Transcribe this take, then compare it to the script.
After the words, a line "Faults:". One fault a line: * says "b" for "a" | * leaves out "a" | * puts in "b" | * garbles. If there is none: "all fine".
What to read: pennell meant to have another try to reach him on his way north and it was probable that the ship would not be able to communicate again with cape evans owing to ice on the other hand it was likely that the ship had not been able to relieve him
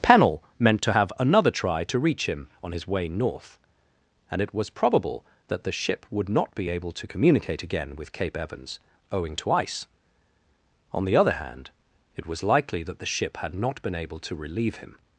pennell meant to have another try to reach him on his way north and it was probable that the ship would not be able to communicate again with cape evans owing to ice on the other hand it was likely that the ship had not been able to relieve him
Faults:
all fine